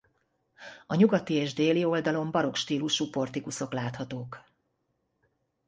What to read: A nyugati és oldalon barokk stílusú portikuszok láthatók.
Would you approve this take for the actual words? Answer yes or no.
no